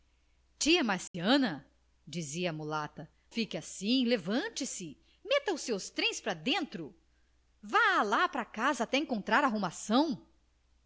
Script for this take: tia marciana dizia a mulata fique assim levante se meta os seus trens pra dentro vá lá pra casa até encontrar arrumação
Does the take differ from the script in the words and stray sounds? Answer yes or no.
yes